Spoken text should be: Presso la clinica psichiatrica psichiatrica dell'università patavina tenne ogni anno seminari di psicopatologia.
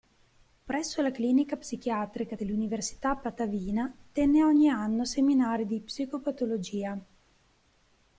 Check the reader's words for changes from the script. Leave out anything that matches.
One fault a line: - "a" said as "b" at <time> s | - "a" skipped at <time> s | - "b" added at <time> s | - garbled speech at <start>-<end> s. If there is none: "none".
- "psichiatrica" skipped at 2.4 s